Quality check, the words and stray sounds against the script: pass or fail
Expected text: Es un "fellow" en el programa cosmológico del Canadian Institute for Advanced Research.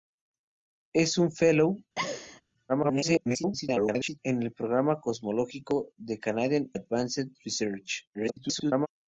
fail